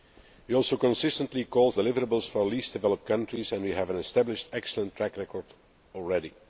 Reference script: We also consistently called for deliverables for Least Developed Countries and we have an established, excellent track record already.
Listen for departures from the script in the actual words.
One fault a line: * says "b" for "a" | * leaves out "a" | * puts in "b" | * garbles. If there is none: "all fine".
* leaves out "for"